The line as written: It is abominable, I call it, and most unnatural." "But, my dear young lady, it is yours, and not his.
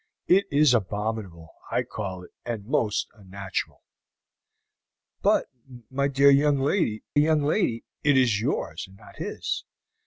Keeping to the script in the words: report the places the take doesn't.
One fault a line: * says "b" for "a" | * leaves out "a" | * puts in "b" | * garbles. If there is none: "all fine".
* puts in "young lady"